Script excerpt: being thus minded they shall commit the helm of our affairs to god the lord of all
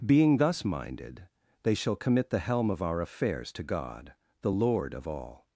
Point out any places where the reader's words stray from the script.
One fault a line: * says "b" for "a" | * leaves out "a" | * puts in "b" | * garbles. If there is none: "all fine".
all fine